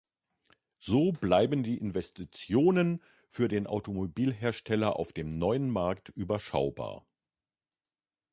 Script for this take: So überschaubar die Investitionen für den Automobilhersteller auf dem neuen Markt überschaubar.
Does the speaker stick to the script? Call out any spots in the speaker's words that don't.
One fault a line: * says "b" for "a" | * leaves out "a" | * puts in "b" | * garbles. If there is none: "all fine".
* says "bleiben" for "überschaubar"